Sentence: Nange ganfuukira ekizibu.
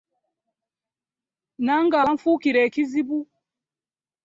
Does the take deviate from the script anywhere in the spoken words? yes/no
no